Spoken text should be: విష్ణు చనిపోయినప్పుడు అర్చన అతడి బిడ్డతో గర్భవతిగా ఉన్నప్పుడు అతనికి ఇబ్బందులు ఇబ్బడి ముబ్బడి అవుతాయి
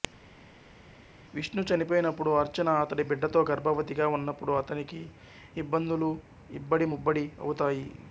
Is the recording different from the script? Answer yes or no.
no